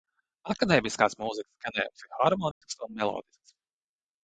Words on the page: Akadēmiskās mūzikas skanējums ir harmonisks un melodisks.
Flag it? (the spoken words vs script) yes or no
no